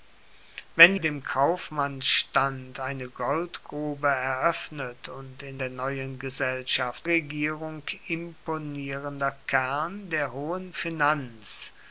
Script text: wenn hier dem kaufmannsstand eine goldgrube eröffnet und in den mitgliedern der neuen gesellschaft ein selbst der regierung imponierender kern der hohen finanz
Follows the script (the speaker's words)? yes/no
no